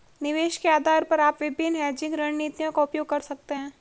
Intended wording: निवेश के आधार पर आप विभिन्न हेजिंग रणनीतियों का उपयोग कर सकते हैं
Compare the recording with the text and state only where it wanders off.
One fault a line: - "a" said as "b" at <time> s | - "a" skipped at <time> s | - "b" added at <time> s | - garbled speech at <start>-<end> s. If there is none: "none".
none